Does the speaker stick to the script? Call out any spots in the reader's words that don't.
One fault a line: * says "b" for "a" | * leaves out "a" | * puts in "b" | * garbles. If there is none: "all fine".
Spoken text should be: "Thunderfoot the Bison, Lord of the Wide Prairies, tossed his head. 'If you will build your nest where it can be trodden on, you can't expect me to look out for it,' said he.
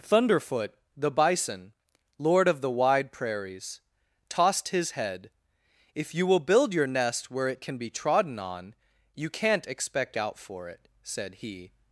* leaves out "me to look"